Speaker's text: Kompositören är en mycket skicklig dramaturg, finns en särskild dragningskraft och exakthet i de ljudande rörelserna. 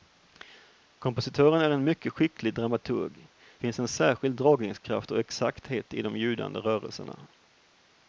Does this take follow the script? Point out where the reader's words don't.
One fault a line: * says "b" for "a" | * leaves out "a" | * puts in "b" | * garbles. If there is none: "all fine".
all fine